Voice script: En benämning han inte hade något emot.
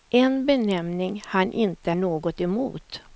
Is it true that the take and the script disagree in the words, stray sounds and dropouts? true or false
true